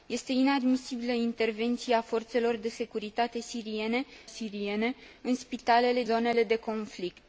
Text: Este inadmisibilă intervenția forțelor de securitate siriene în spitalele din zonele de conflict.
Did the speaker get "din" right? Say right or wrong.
wrong